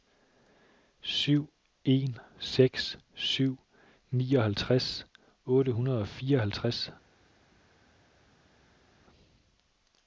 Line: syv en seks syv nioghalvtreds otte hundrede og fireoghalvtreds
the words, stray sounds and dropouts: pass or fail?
pass